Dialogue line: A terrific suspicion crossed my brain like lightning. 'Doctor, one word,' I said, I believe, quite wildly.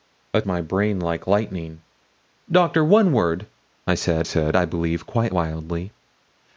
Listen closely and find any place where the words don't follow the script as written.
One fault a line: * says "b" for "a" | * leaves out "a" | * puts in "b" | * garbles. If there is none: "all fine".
* leaves out "terrific suspicion crossed"
* puts in "said"